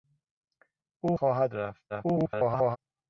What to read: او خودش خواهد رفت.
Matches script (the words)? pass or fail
fail